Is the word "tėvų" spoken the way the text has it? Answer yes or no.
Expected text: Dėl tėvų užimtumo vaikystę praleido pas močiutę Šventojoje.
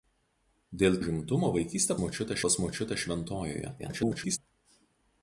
no